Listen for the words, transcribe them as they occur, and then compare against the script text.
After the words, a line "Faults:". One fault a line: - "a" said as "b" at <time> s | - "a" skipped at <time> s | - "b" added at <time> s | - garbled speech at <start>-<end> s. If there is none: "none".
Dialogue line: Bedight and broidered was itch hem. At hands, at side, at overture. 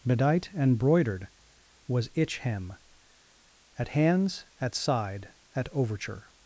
Bedight and broidered was itch hem. At hands, at side, at overture.
Faults:
none